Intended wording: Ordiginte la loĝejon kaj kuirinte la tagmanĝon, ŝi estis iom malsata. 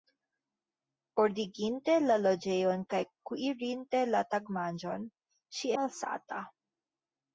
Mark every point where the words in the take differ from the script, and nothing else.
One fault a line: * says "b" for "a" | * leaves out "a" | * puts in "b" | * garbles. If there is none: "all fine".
* leaves out "estis iom"